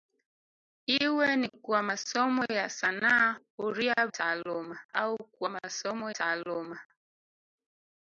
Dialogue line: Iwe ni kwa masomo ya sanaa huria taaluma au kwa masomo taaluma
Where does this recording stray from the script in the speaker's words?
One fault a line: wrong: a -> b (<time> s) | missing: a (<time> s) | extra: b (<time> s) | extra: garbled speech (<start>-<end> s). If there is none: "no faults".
no faults